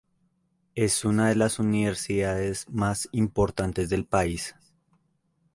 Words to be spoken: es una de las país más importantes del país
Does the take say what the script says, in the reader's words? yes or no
no